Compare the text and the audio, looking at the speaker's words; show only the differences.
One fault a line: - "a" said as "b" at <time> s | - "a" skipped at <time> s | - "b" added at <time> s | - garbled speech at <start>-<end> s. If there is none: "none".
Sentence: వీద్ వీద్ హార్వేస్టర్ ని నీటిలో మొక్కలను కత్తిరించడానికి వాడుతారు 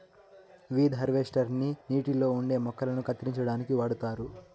- "వీద్" skipped at 0.9 s
- "ఉండే" added at 2.3 s